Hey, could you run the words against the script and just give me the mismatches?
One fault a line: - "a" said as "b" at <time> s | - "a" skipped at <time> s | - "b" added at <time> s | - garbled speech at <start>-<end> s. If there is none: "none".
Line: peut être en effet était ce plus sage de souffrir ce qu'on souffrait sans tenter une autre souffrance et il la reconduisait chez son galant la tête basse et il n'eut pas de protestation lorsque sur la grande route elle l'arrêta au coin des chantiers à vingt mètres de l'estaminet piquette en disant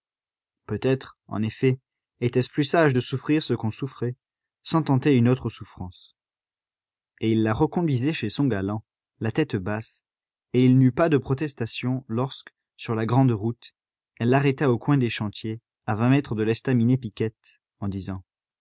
none